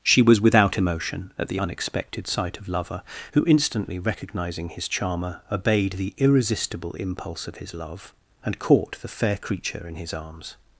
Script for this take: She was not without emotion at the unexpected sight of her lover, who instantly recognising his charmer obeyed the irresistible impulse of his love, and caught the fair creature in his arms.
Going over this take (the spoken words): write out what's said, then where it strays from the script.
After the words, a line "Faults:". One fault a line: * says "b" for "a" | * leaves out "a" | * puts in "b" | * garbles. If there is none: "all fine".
She was without emotion at the unexpected sight of lover, who instantly recognising his charmer obeyed the irresistible impulse of his love, and caught the fair creature in his arms.
Faults:
* leaves out "not"
* leaves out "her"